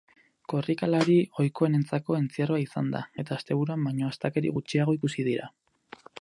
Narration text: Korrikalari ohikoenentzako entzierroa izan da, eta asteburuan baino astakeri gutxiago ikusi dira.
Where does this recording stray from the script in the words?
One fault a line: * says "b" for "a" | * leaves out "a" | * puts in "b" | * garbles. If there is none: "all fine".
all fine